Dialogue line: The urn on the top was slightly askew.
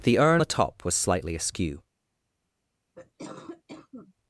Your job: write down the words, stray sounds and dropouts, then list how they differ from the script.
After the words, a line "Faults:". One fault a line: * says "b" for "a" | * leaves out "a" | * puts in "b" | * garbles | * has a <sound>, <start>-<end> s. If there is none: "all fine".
The urn the top was slightly askew.
Faults:
* leaves out "on"
* has a cough, 2.9-4.1 s